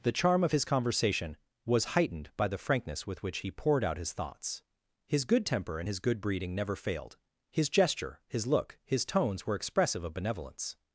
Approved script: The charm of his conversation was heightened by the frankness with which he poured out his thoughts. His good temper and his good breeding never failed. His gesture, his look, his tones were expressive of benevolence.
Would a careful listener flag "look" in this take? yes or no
no